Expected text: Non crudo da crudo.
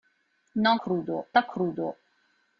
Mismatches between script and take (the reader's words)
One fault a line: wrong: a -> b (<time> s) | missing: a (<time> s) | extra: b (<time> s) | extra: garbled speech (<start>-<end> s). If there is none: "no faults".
no faults